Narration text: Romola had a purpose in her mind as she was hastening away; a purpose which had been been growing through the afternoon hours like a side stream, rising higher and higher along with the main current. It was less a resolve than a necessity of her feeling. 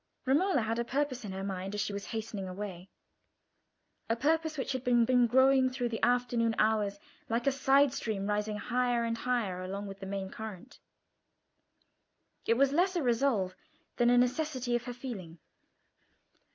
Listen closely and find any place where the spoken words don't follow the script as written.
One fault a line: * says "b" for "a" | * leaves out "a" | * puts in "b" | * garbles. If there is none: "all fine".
all fine